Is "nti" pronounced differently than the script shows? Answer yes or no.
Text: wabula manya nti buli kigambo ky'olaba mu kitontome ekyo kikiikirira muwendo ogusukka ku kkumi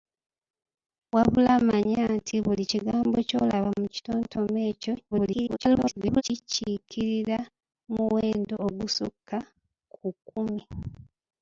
no